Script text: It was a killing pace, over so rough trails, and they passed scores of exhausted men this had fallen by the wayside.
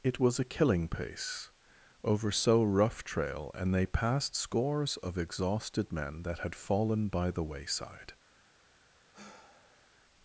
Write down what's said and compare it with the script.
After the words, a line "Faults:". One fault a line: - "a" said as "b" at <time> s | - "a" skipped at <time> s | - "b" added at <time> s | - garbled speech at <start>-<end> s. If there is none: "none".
It was a killing pace, over so rough trail, and they passed scores of exhausted men that had fallen by the wayside.
Faults:
- "trails" said as "trail" at 3.0 s
- "this" said as "that" at 6.2 s